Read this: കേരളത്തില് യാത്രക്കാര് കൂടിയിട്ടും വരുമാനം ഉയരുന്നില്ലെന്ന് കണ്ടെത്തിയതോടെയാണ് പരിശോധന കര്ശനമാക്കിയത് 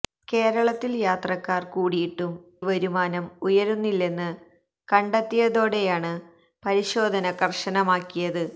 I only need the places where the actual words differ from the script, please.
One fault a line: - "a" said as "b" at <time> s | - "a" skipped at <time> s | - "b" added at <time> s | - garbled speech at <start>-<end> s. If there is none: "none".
none